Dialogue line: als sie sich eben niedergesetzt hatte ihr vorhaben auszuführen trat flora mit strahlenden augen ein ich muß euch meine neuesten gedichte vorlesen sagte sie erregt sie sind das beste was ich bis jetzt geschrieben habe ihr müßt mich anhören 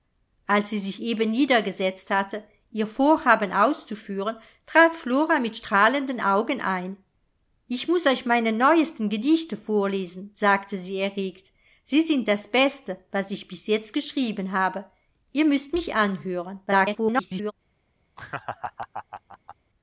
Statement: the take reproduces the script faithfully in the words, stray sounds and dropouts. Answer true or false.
false